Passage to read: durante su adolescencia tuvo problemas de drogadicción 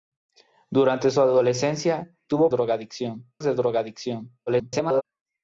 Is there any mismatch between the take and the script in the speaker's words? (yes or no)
yes